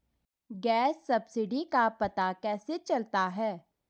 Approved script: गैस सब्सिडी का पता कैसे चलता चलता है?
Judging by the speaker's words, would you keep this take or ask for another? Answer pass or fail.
fail